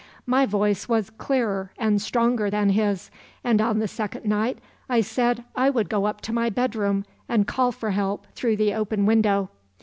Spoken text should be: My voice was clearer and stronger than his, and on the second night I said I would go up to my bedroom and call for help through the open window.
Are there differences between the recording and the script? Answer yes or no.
no